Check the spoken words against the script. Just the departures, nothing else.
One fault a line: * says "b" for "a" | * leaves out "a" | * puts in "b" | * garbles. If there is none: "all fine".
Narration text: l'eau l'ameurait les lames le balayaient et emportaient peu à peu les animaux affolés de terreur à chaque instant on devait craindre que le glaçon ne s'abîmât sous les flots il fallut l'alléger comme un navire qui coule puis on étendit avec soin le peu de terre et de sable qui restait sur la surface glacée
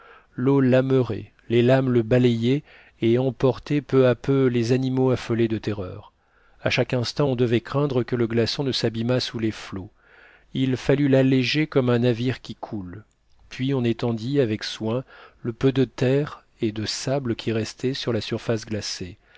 all fine